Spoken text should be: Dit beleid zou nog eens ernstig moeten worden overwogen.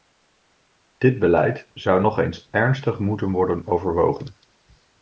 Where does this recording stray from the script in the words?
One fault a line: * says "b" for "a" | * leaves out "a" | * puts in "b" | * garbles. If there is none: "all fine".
all fine